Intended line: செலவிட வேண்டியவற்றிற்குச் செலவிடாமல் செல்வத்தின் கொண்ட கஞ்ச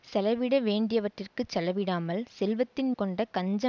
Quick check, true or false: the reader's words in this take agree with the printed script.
true